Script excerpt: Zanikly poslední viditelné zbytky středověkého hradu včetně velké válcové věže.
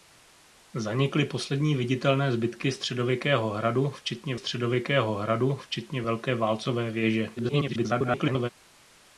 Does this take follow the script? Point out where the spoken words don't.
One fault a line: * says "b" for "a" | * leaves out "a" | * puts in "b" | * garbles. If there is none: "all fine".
* puts in "středověkého hradu včetně"
* garbles